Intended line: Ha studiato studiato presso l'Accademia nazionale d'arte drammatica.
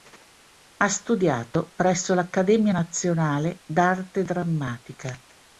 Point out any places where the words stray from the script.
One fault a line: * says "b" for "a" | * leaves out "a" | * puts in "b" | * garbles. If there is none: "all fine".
* leaves out "studiato"